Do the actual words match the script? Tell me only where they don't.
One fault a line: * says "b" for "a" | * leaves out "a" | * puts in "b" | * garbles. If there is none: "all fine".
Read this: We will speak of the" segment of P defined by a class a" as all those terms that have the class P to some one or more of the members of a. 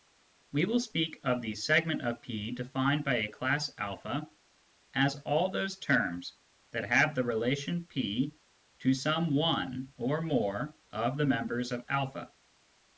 * says "relation" for "class"